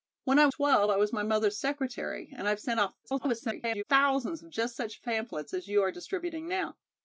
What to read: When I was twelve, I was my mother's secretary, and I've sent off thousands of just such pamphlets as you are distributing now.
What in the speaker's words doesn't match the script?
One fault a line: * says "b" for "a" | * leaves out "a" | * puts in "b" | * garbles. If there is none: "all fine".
* leaves out "was"
* garbles